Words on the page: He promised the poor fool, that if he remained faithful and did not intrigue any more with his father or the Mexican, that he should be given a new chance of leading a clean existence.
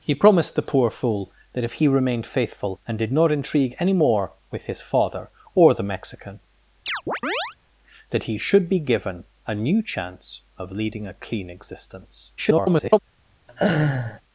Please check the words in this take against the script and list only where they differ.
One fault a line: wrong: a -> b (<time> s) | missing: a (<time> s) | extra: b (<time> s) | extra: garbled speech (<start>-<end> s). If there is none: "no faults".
extra: garbled speech (12.4-13.0 s)